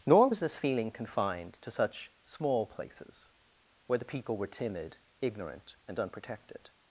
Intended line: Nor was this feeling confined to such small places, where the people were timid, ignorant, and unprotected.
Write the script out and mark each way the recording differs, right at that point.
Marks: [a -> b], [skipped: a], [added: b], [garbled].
Nor was this feeling confined to such small places, where the people were timid, ignorant, and unprotected.